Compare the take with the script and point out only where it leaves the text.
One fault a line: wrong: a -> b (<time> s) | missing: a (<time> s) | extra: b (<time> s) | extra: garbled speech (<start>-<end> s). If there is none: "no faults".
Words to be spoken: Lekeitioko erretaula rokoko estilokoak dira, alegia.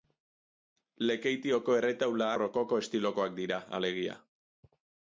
no faults